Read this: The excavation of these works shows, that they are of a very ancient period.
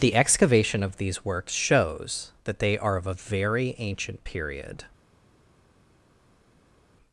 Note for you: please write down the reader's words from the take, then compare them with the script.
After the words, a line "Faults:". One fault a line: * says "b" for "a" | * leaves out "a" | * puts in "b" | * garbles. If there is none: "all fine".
The excavation of these works shows, that they are of a very ancient period.
Faults:
all fine